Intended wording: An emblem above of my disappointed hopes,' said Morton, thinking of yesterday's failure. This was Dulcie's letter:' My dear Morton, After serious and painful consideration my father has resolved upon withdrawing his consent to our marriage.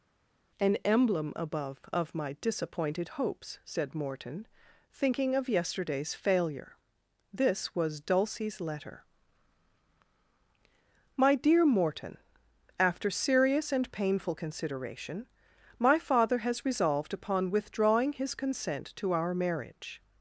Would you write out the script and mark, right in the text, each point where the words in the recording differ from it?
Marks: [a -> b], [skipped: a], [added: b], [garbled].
An emblem above of my disappointed hopes,' said Morton, thinking of yesterday's failure. This was Dulcie's letter:' My dear Morton, After serious and painful consideration my father has resolved upon withdrawing his consent to our marriage.